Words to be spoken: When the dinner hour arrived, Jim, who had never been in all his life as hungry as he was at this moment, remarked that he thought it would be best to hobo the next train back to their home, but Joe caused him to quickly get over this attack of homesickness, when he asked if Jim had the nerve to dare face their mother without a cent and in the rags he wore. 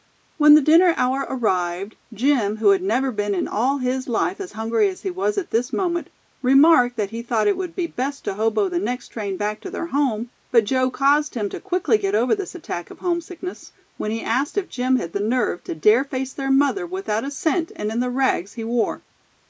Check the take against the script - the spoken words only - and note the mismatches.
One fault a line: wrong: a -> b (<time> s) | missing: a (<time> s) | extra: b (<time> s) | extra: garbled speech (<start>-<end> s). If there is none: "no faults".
no faults